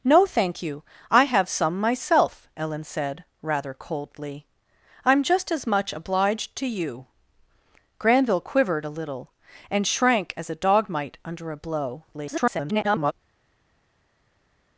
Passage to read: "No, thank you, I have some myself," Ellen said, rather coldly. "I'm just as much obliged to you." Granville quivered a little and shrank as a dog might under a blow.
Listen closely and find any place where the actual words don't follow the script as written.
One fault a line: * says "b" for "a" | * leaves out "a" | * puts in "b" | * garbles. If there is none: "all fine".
* garbles